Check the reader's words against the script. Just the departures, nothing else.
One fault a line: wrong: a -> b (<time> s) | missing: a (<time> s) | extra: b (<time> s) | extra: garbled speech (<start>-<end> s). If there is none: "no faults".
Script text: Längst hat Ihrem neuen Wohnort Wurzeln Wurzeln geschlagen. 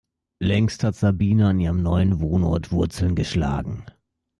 extra: Sabine an (0.9 s)
missing: Wurzeln (3.1 s)